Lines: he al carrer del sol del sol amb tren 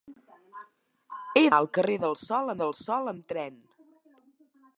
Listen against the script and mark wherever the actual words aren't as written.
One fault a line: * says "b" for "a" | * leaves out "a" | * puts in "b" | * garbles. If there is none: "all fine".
all fine